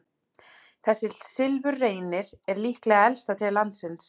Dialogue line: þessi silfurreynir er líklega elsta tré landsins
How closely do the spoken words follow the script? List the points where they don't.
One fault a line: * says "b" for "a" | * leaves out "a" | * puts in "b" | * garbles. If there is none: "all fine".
all fine